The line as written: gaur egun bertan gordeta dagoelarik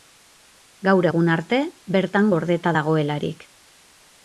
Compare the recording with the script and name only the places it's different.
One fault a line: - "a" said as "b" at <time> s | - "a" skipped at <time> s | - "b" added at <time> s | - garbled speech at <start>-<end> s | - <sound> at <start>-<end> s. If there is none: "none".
- "arte" added at 1.3 s